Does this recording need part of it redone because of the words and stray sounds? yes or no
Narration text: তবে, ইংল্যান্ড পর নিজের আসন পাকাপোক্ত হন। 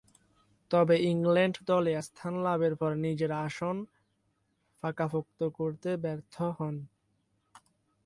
yes